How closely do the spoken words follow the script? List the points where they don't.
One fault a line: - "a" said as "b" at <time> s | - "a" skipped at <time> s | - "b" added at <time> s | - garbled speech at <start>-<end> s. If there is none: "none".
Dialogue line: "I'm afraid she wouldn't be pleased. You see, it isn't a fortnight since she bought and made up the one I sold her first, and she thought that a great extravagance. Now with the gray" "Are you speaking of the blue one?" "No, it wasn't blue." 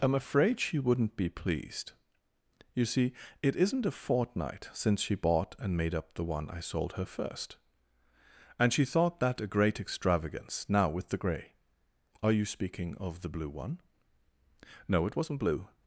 none